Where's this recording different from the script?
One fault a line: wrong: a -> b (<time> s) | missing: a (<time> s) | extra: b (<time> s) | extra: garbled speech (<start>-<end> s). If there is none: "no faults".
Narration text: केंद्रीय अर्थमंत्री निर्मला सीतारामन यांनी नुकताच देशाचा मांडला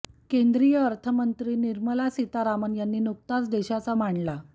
no faults